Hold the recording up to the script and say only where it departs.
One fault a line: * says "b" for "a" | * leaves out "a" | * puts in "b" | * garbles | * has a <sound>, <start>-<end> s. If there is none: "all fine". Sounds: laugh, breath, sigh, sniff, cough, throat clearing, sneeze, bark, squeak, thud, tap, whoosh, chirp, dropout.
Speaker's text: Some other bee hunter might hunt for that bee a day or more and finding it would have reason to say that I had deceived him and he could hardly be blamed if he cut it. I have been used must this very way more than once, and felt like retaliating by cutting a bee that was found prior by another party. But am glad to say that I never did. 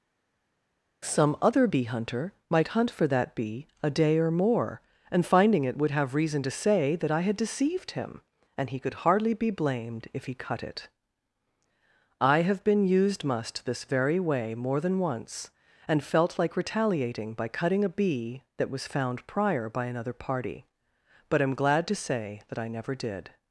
all fine